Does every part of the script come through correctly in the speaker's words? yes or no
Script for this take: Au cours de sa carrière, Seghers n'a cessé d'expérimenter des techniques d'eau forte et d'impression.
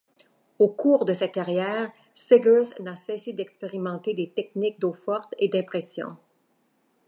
yes